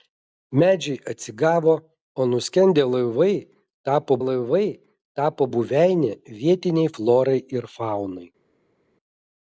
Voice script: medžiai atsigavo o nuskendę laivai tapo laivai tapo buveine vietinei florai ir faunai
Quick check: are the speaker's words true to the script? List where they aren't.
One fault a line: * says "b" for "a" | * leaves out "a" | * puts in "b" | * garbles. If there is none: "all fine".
all fine